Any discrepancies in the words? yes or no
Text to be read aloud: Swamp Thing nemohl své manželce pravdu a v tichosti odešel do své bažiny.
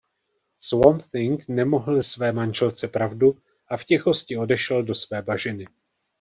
no